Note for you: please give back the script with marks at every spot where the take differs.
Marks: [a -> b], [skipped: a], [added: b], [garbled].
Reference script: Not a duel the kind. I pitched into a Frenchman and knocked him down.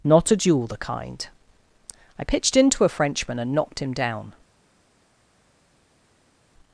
Not a duel the kind. I pitched into a Frenchman and knocked him down.